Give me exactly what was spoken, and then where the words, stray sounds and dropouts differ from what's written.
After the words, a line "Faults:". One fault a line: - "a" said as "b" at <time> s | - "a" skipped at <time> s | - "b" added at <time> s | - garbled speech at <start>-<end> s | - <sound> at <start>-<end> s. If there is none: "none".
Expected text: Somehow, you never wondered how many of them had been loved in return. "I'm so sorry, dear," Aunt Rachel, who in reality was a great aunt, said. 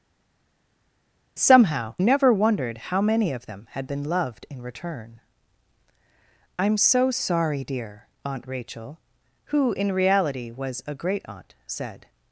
Somehow, never wondered how many of them had been loved in return. "I'm so sorry, dear," Aunt Rachel, who in reality was a great aunt, said.
Faults:
- "you" skipped at 1.9 s